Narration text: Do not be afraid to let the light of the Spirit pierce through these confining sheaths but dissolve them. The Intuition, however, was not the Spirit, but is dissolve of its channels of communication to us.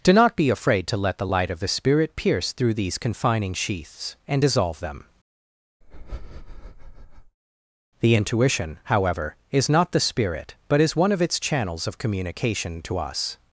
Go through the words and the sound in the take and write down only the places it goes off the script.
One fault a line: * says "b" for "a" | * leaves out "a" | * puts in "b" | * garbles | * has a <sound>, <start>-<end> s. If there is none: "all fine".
* says "and" for "but"
* has a breath, 5.8-7.4 s
* says "is" for "was"
* says "one" for "dissolve"